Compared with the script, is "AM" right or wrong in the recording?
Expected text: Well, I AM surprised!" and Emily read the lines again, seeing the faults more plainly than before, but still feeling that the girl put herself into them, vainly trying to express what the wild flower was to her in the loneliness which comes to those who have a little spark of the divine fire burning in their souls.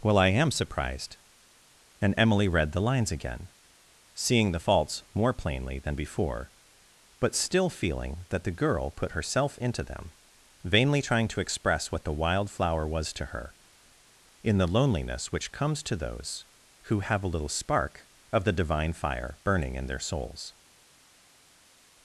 right